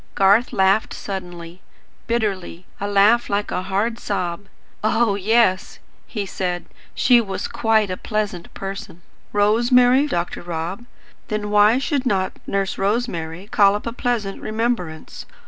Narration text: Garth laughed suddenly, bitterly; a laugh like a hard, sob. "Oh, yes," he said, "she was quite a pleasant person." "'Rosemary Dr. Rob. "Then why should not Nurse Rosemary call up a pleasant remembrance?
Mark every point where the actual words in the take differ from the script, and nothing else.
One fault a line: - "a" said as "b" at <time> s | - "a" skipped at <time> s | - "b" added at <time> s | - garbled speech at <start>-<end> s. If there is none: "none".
none